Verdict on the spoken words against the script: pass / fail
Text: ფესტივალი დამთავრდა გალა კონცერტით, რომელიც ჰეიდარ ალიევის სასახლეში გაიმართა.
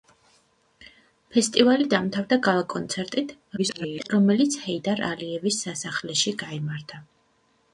fail